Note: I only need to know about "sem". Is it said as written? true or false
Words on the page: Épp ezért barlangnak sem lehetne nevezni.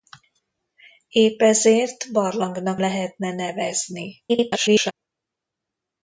false